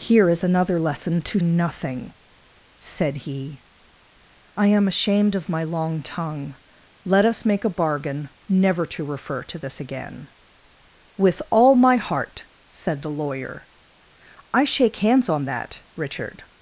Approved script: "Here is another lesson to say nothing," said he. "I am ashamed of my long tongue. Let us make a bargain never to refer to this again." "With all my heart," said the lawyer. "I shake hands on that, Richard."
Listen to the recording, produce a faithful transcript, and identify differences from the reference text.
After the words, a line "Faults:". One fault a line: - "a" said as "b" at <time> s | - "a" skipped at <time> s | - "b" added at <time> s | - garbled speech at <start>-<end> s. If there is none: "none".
"Here is another lesson to nothing," said he. "I am ashamed of my long tongue. Let us make a bargain never to refer to this again." "With all my heart," said the lawyer. "I shake hands on that, Richard."
Faults:
- "say" skipped at 1.4 s